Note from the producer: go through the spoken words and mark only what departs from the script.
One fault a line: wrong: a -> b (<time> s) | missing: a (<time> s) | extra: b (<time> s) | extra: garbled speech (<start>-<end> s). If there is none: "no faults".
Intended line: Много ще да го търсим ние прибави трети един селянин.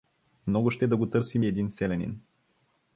missing: ние прибави трети (1.4 s)